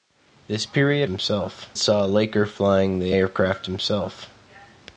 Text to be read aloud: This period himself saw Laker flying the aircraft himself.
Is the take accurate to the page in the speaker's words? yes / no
yes